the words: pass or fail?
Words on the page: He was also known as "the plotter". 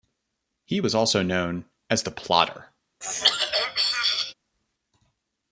pass